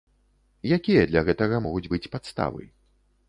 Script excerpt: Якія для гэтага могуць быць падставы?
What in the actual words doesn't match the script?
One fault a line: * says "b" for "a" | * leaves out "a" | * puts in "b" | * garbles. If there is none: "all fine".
all fine